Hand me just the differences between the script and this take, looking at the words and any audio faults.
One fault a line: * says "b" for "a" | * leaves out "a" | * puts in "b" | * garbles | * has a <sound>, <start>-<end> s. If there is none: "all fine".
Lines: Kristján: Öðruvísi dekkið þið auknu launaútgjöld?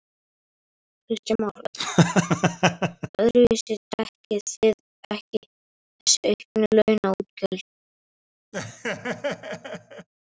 * puts in "Már"
* has a laugh, 1.7-3.1 s
* puts in "ekki þessi"
* has a laugh, 8.5-10.1 s